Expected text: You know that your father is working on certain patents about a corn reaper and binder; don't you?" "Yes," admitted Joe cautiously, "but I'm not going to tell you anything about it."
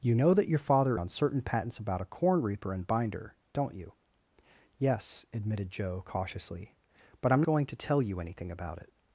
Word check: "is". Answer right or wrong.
wrong